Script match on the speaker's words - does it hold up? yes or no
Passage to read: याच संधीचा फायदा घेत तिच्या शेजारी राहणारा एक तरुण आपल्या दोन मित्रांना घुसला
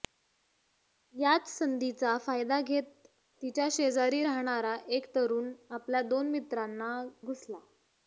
yes